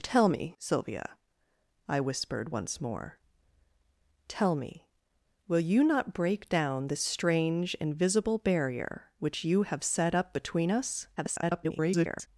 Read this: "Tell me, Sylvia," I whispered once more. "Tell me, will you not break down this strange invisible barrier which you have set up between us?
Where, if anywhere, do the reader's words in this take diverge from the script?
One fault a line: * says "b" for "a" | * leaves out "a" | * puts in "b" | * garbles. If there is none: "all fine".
* garbles